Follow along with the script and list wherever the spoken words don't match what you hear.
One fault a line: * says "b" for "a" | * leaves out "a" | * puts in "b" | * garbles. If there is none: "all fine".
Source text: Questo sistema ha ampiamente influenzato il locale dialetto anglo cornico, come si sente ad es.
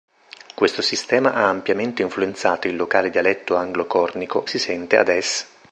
* leaves out "come"